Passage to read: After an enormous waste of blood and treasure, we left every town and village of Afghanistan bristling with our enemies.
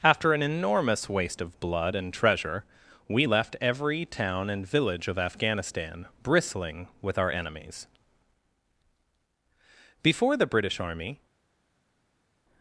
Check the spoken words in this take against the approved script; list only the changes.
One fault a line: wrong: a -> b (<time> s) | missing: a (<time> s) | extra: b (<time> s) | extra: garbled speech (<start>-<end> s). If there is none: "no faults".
extra: Before the British army (10.1 s)